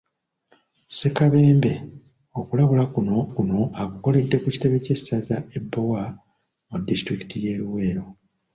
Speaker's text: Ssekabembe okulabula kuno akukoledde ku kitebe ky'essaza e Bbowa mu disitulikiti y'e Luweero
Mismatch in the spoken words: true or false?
true